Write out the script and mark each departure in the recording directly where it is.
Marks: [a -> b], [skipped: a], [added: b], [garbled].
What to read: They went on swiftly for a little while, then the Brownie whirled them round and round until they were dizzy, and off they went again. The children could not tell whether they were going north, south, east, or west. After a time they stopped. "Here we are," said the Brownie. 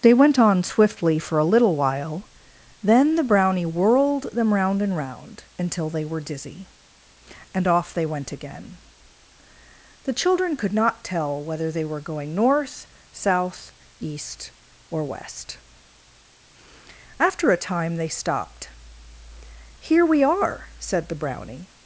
They went on swiftly for a little while, then the Brownie whirled them round and round until they were dizzy, and off they went again. The children could not tell whether they were going north, south, east, or west. After a time they stopped. "Here we are," said the Brownie.